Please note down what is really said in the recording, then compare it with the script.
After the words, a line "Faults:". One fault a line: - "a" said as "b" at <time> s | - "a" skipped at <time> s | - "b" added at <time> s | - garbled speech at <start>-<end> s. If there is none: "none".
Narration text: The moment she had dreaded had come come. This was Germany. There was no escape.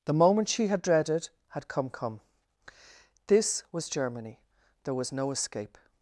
The moment she had dreaded had come come. This was Germany. There was no escape.
Faults:
none